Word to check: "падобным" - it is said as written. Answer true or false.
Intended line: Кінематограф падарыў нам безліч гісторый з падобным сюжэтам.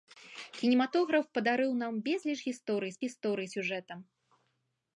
false